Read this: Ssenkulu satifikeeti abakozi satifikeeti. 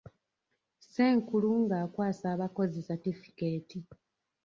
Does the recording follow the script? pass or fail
fail